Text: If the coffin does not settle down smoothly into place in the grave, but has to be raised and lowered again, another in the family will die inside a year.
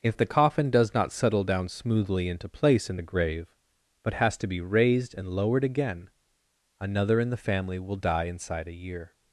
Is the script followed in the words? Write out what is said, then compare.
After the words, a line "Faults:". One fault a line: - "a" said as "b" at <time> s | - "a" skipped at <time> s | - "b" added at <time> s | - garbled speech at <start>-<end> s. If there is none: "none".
If the coffin does not settle down smoothly into place in the grave, but has to be raised and lowered again, another in the family will die inside a year.
Faults:
none